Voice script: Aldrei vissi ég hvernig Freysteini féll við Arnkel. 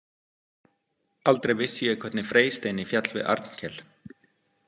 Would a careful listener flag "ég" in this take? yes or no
no